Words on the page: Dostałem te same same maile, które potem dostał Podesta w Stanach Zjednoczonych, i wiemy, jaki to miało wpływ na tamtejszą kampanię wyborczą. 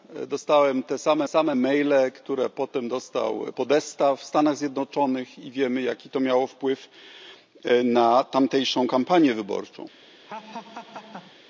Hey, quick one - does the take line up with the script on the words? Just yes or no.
yes